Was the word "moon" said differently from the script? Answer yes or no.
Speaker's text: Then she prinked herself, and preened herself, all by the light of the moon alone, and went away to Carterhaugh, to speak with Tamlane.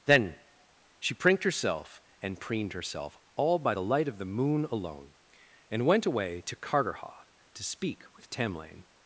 no